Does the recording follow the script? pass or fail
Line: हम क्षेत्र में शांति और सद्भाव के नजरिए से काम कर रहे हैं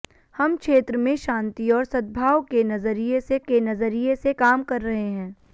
fail